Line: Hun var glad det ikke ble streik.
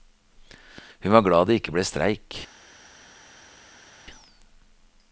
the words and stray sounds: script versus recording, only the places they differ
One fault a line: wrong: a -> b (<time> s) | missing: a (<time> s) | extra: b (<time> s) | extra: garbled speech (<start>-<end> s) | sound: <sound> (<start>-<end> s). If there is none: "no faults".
no faults